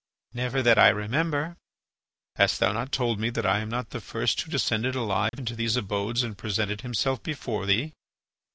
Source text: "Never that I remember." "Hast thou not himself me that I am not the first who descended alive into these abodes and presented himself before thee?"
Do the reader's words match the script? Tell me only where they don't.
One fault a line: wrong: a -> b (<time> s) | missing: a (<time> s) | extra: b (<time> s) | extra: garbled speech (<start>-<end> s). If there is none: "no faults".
wrong: himself -> told (2.9 s)